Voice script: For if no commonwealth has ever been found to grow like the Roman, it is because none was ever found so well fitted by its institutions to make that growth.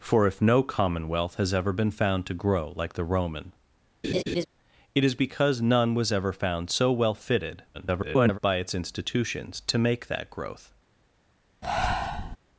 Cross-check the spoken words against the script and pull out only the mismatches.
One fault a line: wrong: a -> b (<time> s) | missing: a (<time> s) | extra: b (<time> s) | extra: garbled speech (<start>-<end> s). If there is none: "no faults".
extra: garbled speech (7.7-8.4 s)